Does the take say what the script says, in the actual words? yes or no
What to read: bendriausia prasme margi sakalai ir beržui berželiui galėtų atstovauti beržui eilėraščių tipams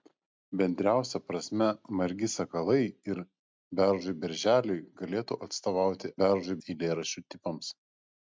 yes